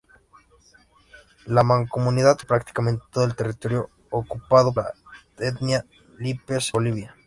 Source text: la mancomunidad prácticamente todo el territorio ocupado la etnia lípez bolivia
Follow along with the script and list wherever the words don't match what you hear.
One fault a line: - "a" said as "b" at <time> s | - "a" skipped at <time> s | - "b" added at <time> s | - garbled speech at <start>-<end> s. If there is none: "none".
none